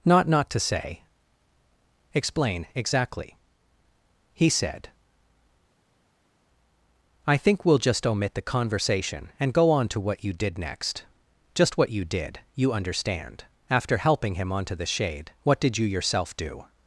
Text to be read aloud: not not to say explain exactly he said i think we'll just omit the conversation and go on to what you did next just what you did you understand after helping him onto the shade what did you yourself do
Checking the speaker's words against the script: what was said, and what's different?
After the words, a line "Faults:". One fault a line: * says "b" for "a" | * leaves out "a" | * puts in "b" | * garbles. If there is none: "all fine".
not not to say explain exactly he said i think we'll just omit the conversation and go on to what you did next just what you did you understand after helping him onto the shade what did you yourself do
Faults:
all fine